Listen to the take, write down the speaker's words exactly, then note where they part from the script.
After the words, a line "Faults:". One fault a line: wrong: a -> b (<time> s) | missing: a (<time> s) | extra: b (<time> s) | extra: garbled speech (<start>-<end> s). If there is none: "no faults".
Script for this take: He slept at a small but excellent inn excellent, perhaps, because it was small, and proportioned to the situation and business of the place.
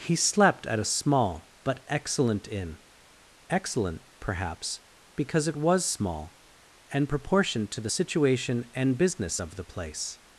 He slept at a small but excellent inn excellent, perhaps, because it was small, and proportioned to the situation and business of the place.
Faults:
no faults